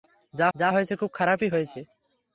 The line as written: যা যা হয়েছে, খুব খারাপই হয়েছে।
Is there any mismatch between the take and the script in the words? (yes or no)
no